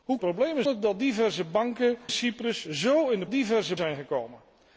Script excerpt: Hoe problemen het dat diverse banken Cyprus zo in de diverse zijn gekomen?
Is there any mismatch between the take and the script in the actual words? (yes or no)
no